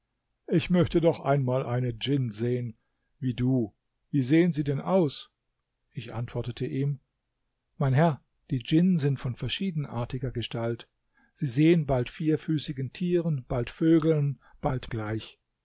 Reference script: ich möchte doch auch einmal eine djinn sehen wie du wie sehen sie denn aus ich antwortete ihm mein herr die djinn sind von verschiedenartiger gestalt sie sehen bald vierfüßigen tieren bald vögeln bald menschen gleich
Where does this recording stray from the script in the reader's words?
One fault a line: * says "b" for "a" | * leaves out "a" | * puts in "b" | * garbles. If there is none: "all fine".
* leaves out "auch"
* leaves out "menschen"